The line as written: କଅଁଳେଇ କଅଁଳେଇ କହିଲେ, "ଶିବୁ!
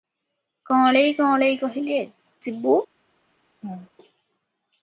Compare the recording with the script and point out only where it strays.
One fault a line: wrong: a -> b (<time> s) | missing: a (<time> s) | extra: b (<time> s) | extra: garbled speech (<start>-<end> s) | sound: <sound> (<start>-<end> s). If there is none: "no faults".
sound: laugh (3.6-3.9 s)